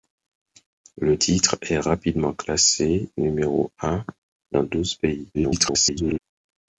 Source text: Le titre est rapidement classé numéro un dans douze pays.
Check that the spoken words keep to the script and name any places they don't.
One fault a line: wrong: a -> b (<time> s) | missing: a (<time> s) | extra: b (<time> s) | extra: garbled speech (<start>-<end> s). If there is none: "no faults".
extra: garbled speech (5.3-6.2 s)